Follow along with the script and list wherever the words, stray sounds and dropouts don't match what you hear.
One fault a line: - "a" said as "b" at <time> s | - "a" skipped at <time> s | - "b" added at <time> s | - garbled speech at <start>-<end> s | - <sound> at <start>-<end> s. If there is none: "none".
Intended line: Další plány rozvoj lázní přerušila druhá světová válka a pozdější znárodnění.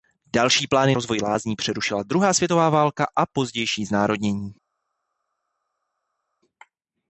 none